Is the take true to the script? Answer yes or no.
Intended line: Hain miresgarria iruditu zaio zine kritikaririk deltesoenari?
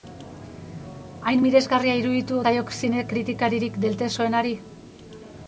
yes